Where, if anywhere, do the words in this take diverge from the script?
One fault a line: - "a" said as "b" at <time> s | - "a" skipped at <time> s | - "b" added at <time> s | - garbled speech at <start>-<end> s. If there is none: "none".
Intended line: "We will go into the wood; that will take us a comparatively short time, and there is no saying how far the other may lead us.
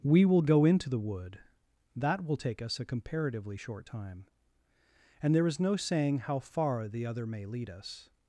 none